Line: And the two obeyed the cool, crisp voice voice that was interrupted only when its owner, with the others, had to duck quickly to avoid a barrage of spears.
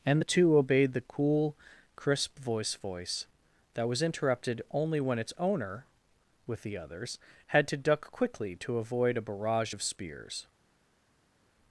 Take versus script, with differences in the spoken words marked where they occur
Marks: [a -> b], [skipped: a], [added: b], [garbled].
And the two obeyed the cool, crisp voice voice that was interrupted only when its owner, with the others, had to duck quickly to avoid a barrage of spears.